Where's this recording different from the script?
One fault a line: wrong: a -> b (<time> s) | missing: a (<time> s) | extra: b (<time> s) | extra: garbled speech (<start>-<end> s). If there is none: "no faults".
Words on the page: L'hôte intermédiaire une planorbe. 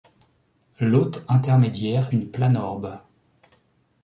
no faults